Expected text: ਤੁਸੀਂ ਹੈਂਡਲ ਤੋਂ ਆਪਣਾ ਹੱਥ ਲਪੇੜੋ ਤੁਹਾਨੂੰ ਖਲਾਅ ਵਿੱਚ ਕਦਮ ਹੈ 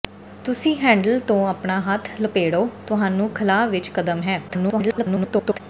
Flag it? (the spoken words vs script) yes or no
yes